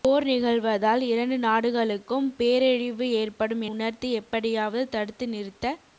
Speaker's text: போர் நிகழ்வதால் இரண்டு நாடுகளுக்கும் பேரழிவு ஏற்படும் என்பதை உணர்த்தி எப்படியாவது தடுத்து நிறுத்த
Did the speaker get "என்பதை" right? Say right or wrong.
wrong